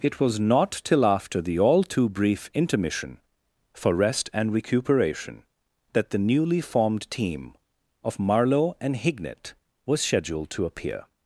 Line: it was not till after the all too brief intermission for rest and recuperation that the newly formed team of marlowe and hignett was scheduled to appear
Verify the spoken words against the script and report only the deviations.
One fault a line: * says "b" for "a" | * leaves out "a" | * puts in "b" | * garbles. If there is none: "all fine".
all fine